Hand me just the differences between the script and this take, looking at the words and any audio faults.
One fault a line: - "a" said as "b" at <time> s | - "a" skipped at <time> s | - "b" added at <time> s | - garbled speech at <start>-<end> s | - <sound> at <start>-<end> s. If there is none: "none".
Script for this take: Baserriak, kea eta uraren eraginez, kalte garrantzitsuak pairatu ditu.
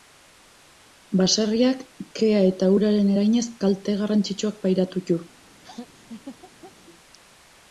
- laugh at 5.6-6.7 s